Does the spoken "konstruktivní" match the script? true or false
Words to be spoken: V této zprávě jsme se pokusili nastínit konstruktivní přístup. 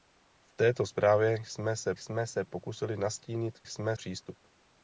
false